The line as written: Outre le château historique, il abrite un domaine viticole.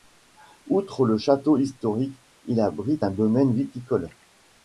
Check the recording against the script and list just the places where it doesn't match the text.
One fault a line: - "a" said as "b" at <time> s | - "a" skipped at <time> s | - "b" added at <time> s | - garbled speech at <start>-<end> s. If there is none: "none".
none